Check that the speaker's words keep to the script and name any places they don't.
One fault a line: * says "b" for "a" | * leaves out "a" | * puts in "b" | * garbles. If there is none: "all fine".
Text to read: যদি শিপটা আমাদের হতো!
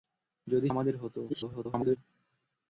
* leaves out "শিপটা"
* garbles